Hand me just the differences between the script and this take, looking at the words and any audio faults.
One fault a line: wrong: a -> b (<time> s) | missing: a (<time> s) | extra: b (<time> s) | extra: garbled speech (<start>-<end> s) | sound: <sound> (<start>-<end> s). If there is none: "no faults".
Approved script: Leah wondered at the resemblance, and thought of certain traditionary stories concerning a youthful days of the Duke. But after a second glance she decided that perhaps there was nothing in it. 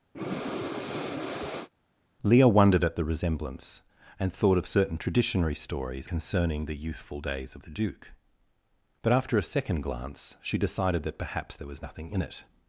sound: breath (0.1-1.7 s)
wrong: a -> the (6.6 s)